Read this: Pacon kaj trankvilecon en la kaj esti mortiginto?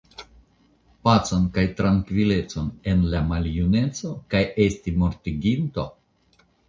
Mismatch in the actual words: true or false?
true